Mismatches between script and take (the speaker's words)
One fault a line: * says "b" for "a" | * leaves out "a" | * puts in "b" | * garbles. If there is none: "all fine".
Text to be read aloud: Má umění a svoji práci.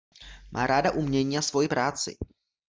* puts in "ráda"